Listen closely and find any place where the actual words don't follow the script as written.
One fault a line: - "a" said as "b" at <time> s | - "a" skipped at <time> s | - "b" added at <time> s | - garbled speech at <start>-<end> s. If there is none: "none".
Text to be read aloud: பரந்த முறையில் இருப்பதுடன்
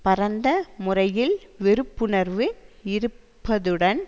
- "வெறுப்புணர்வு" added at 1.6 s